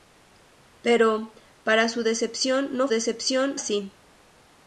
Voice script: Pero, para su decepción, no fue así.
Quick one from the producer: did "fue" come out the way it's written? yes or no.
no